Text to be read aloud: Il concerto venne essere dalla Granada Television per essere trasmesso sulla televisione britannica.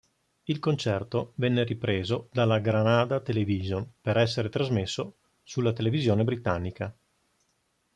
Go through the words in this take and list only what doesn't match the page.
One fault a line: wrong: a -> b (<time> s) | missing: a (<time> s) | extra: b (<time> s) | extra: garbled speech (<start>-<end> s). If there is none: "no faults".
wrong: essere -> ripreso (1.6 s)